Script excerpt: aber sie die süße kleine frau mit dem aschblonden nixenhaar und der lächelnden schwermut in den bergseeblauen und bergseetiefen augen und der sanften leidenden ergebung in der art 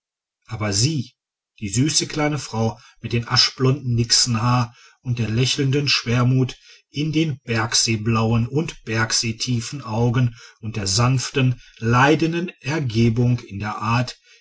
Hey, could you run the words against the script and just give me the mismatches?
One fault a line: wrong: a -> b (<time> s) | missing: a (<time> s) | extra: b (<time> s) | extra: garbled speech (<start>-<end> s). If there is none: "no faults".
no faults